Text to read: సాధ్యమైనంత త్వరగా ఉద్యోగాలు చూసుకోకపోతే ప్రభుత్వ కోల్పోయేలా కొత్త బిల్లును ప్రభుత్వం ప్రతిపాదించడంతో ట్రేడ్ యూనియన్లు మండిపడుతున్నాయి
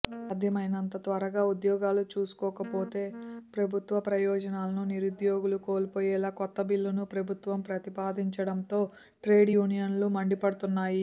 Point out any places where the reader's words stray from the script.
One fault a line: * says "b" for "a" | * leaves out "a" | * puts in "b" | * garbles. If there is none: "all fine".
* puts in "ప్రయోజనాలను నిరుద్యోగులు"